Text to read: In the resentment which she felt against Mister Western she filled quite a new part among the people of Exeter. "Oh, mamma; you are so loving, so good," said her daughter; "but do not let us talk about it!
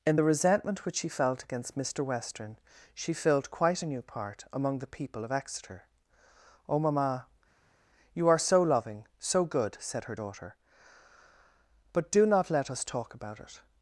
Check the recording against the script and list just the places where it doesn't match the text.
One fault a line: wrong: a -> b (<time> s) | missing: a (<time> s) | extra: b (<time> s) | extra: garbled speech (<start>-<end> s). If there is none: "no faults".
no faults